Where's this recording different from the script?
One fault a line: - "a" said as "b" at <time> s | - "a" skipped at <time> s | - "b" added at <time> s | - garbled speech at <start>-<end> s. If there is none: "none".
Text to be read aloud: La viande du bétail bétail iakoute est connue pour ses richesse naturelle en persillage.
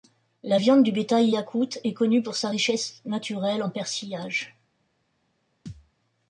- "bétail" skipped at 1.3 s
- "ses" said as "sa" at 2.4 s